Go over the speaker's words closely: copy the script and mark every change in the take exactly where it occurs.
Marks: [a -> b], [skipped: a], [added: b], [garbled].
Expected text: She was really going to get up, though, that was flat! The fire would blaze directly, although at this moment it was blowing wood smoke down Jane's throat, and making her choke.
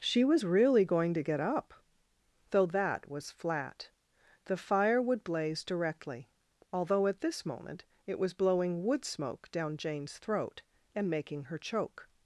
She was really going to get up, though, that was flat! The fire would blaze directly, although at this moment it was blowing wood smoke down Jane's throat, and making her choke.